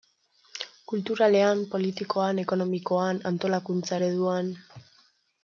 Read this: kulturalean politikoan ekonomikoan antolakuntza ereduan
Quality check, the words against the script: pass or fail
pass